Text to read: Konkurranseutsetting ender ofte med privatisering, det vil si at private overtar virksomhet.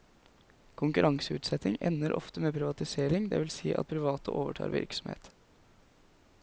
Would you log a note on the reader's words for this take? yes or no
no